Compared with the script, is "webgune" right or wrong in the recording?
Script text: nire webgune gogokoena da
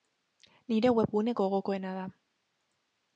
right